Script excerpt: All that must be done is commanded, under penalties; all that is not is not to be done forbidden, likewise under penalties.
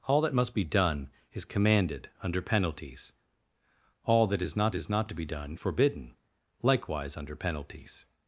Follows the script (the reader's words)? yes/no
yes